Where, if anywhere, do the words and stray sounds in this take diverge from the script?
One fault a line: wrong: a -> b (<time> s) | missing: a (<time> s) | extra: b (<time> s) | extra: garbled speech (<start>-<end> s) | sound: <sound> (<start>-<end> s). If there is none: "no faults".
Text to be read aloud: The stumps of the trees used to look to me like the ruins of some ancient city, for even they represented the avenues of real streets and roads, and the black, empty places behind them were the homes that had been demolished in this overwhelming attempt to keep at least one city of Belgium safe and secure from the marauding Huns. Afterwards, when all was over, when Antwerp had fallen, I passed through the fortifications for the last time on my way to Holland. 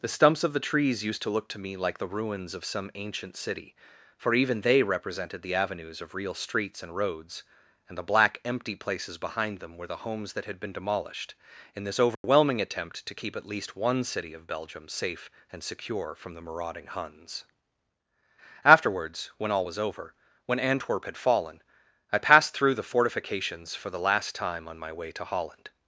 sound: dropout (12.1-12.2 s)